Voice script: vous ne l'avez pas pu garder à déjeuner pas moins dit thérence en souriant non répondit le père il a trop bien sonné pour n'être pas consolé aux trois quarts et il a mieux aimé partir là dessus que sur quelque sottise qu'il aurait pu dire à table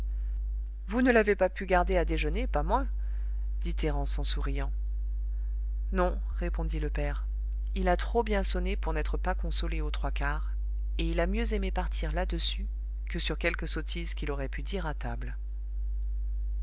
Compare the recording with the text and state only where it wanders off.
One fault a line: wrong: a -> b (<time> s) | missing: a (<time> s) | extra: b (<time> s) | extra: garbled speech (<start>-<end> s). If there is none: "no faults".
no faults